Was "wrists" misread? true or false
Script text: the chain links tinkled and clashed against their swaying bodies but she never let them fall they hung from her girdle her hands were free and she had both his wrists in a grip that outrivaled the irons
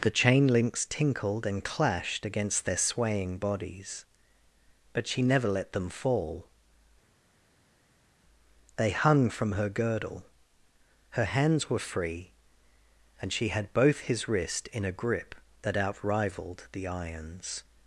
true